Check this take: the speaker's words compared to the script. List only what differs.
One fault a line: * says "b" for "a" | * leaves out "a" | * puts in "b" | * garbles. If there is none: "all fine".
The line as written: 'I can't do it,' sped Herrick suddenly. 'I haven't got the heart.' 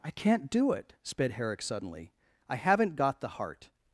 all fine